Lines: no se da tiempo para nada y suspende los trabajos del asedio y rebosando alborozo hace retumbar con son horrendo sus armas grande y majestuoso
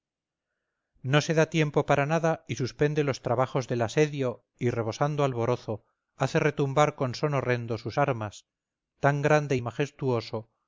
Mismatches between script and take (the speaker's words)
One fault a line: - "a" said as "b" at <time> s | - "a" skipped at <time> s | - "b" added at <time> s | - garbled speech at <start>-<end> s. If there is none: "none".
- "tan" added at 9.0 s